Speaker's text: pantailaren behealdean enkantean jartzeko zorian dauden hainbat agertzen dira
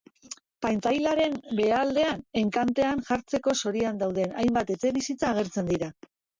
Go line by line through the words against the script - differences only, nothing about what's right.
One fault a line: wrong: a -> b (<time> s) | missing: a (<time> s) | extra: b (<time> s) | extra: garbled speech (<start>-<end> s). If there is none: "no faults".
extra: etxebizitza (4.8 s)